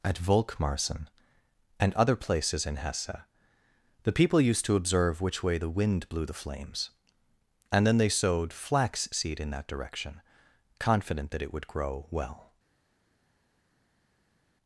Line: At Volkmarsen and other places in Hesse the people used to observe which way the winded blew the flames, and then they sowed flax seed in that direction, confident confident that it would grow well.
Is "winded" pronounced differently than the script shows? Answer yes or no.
yes